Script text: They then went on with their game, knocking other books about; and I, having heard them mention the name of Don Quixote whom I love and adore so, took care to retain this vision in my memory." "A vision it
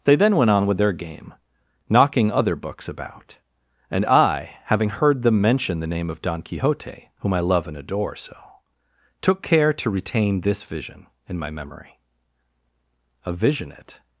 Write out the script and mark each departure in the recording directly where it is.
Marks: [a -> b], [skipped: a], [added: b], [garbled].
They then went on with their game, knocking other books about; and I, having heard them mention the name of Don Quixote whom I love and adore so, took care to retain this vision in my memory." "A vision it